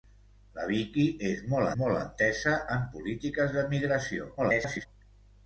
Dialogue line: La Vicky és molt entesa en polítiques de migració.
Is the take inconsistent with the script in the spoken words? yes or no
yes